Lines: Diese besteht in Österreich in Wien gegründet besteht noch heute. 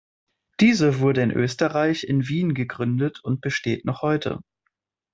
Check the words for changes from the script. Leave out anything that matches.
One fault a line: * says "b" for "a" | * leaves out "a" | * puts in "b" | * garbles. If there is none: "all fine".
* says "wurde" for "besteht"
* puts in "und"